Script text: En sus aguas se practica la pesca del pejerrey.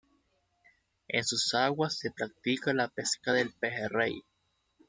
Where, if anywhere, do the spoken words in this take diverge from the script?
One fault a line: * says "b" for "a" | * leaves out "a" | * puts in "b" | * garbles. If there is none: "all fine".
all fine